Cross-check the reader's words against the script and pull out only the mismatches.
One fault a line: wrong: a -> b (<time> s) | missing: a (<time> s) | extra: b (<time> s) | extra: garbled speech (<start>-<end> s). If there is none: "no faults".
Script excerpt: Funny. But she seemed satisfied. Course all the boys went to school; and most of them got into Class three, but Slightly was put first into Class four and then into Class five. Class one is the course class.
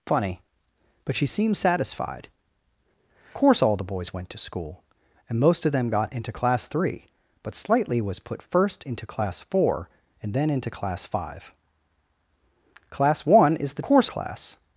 no faults